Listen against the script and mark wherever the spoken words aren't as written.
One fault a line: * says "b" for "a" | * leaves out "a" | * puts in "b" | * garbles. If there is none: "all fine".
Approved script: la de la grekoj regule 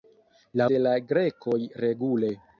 all fine